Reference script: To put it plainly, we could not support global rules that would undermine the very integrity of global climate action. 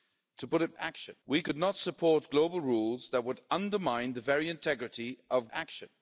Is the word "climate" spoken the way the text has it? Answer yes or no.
no